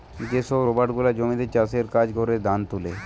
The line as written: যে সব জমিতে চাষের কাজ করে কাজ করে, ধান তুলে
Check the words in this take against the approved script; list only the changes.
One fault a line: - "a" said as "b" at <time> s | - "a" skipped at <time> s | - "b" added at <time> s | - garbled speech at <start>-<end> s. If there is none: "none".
- "রোবট গুলা" added at 0.7 s
- "কাজ করে" skipped at 2.3 s